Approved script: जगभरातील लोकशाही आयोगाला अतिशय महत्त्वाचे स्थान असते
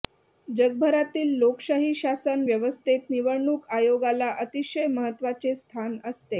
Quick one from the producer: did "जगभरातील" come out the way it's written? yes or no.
yes